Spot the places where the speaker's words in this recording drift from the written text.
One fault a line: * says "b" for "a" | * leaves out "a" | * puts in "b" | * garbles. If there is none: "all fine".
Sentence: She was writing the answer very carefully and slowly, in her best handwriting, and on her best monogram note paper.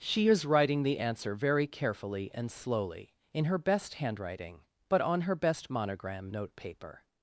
* says "is" for "was"
* says "but" for "and"